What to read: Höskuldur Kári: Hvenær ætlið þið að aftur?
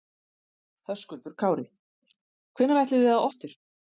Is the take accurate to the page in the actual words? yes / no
yes